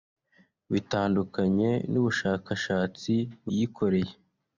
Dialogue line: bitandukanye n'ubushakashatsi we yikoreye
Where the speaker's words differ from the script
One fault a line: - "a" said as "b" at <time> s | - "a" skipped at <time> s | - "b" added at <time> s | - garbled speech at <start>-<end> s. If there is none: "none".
- "we" skipped at 3.1 s